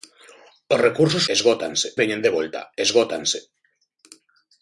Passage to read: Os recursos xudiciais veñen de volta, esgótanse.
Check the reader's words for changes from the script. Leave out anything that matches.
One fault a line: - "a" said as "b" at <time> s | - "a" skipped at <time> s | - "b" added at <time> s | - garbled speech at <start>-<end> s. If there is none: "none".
- "xudiciais" said as "esgótanse" at 1.3 s